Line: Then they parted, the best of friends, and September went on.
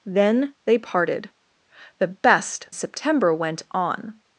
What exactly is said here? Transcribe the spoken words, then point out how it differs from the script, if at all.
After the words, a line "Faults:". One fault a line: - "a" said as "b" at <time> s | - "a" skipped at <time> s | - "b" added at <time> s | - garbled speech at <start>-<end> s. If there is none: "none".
Then they parted, the best September went on.
Faults:
- "of friends and" skipped at 2.7 s